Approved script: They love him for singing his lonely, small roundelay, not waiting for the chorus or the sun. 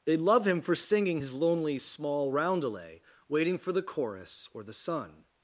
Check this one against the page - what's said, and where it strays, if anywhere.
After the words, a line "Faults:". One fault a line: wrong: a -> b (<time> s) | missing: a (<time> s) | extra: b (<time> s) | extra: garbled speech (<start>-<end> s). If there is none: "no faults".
They love him for singing his lonely, small roundelay, waiting for the chorus or the sun.
Faults:
missing: not (3.0 s)